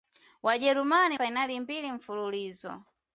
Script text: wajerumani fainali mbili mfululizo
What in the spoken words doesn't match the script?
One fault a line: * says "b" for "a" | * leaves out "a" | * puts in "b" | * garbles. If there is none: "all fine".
all fine